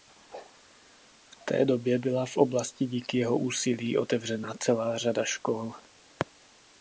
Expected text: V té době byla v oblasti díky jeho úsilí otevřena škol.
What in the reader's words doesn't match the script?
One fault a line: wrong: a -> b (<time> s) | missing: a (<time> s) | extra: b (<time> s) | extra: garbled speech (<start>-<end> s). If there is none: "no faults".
extra: celá řada (4.6 s)